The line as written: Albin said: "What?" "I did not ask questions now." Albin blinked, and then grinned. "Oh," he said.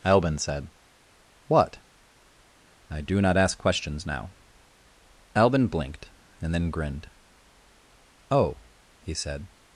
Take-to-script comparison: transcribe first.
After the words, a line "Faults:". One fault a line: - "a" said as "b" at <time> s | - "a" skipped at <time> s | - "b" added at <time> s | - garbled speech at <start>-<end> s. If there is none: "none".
Albin said: "What?" "I do not ask questions now." Albin blinked, and then grinned. "Oh," he said.
Faults:
- "did" said as "do" at 3.0 s